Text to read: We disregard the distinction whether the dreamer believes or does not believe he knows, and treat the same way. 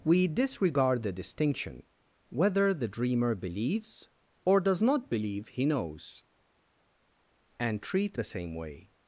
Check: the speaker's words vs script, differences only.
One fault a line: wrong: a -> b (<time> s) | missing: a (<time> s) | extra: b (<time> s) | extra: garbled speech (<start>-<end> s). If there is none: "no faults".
no faults